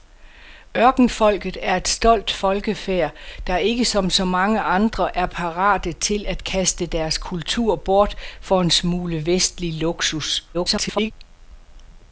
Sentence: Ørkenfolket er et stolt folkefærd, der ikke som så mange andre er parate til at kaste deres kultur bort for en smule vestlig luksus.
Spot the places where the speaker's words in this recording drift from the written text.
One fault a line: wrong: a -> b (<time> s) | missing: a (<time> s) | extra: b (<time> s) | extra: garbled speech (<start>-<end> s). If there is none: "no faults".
extra: garbled speech (10.5-11.1 s)